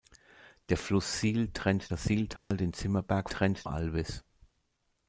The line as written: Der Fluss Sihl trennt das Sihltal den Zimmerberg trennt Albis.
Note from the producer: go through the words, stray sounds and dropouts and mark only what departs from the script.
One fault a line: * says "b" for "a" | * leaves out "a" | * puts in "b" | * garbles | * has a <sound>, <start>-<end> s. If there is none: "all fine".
* has a dropout, 2.4-2.5 s